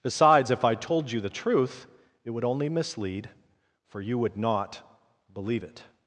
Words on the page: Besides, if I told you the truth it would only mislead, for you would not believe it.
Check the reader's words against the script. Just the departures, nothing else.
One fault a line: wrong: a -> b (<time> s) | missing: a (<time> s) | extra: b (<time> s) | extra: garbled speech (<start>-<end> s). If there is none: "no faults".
no faults